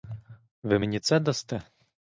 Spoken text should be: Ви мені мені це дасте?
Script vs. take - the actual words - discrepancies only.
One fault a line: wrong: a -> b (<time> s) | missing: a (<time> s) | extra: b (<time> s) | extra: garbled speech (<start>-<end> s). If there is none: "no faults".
missing: мені (1.0 s)